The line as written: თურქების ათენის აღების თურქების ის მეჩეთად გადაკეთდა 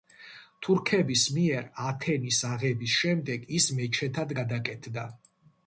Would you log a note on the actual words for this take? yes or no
yes